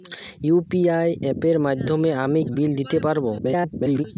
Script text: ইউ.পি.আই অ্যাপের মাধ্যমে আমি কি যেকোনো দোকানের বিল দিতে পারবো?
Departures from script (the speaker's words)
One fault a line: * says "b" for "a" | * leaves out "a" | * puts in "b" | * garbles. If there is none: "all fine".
* leaves out "কি যেকোনো দোকানের"
* garbles